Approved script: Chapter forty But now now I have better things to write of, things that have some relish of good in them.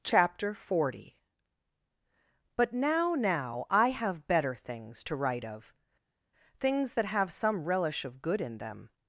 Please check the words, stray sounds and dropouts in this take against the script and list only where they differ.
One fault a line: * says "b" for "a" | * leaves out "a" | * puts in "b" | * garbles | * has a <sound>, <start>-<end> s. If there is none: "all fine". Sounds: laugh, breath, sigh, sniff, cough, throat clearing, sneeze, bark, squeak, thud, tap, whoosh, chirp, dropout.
all fine